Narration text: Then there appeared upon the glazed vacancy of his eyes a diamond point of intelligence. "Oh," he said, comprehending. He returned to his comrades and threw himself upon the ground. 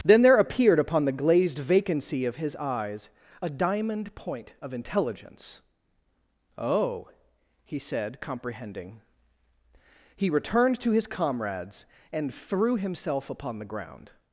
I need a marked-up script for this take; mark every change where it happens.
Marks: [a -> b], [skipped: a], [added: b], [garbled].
Then there appeared upon the glazed vacancy of his eyes a diamond point of intelligence. "Oh," he said, comprehending. He returned to his comrades and threw himself upon the ground.